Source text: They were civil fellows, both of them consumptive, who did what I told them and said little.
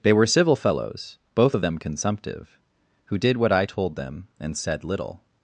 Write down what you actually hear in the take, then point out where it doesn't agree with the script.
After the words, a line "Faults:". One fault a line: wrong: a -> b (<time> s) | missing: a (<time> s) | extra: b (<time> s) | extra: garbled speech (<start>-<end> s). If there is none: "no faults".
They were civil fellows, both of them consumptive, who did what I told them and said little.
Faults:
no faults